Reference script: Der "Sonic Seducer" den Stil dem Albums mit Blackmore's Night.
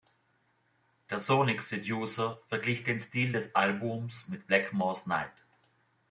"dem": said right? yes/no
no